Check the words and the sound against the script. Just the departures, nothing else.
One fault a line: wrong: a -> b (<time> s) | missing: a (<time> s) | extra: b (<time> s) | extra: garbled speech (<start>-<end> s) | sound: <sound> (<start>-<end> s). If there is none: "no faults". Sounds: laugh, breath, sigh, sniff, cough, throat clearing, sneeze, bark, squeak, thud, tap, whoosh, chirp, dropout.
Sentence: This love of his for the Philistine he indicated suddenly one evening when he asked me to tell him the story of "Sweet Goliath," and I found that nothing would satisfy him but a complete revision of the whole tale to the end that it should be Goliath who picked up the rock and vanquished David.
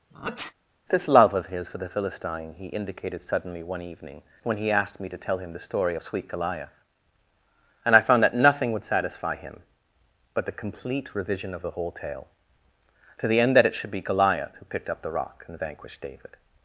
sound: sneeze (0.1-0.5 s)
wrong: a -> the (10.5 s)